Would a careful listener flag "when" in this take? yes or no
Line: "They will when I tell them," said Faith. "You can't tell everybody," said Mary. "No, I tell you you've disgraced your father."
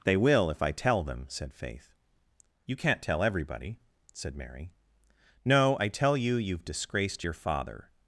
yes